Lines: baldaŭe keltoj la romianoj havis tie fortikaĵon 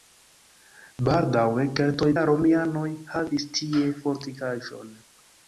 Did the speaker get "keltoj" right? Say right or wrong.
right